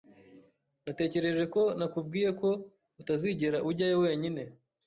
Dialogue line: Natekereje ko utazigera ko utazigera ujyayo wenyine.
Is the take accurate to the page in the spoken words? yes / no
no